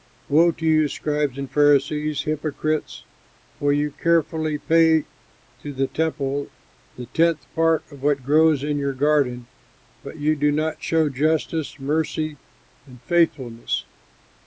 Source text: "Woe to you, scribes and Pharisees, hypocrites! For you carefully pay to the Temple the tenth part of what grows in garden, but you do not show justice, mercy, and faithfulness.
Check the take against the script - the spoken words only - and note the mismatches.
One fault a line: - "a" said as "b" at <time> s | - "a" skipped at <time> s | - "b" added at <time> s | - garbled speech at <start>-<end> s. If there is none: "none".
- "your" added at 8.8 s